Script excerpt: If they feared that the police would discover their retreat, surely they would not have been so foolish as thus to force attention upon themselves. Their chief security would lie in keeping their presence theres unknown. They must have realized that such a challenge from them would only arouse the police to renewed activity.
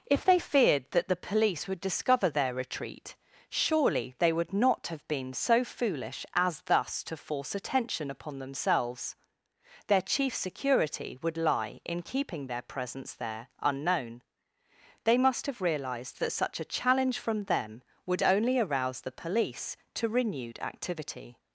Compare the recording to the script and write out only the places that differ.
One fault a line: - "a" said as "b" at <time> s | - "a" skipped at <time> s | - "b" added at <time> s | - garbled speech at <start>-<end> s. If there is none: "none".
- "theres" said as "there" at 13.1 s